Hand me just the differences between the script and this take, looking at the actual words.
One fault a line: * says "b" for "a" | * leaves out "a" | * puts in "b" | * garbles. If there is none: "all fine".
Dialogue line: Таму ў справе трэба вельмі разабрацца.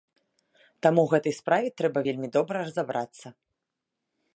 * puts in "гэтай"
* puts in "добра"